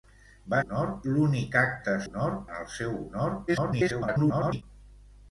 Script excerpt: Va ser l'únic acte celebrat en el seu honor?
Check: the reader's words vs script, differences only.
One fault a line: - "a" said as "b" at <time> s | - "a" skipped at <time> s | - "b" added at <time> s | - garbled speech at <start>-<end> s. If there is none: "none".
- "ser" said as "honor" at 0.6 s
- "celebrat" said as "honor" at 2.1 s
- garbled speech at 3.5-4.6 s